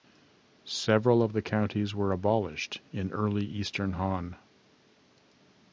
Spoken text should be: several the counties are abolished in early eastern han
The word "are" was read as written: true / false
false